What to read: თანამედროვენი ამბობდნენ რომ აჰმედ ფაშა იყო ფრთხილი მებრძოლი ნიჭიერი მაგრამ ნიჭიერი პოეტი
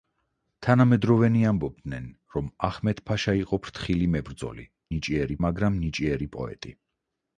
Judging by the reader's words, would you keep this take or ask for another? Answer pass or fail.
pass